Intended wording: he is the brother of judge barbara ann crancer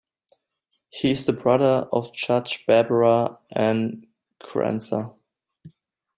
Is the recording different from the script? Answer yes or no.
no